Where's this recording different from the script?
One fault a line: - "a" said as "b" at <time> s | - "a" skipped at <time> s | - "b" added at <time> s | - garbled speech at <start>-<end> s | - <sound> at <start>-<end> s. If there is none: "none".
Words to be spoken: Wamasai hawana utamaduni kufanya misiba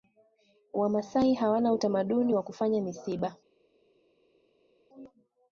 - "wa" added at 2.3 s